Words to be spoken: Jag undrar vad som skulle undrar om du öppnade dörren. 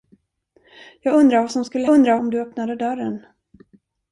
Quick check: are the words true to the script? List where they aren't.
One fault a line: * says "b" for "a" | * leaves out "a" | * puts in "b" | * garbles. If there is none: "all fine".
all fine